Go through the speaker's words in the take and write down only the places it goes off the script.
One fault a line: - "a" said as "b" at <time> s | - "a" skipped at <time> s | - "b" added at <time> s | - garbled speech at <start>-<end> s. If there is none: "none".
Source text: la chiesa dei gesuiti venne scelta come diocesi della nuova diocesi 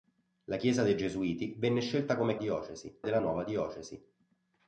none